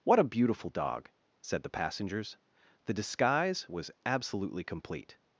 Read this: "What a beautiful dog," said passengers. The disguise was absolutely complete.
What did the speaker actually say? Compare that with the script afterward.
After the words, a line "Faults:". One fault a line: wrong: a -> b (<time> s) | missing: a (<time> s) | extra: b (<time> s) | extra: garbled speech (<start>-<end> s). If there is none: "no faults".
"What a beautiful dog," said the passengers. The disguise was absolutely complete.
Faults:
extra: the (1.6 s)